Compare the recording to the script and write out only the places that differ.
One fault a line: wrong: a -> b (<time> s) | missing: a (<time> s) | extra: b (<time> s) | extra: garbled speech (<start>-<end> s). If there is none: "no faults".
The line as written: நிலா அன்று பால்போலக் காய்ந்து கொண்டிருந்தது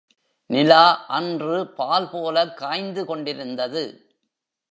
no faults